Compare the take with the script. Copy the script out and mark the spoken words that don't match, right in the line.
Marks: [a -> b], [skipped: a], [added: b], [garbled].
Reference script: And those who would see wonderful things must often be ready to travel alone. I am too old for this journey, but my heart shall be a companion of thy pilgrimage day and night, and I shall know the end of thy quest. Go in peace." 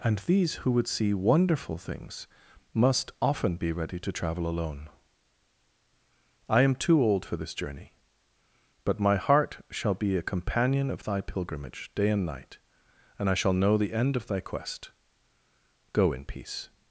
And [those -> these] who would see wonderful things must often be ready to travel alone. I am too old for this journey, but my heart shall be a companion of thy pilgrimage day and night, and I shall know the end of thy quest. Go in peace."